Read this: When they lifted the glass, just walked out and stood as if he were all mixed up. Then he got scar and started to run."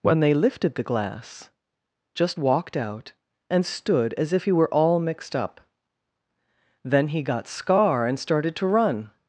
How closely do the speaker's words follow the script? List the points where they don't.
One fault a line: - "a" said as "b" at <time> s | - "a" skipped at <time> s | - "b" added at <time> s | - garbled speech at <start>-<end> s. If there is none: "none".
none